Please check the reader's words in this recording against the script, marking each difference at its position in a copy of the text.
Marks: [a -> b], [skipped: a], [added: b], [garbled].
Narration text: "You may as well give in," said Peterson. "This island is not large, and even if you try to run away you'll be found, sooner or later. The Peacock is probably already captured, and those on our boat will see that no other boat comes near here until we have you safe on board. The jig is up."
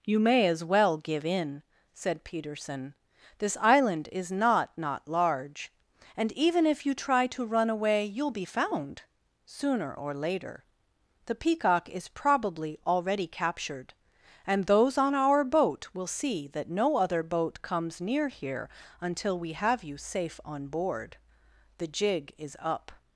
"You may as well give in," said Peterson. "This island is not [added: not] large, and even if you try to run away you'll be found, sooner or later. The Peacock is probably already captured, and those on our boat will see that no other boat comes near here until we have you safe on board. The jig is up."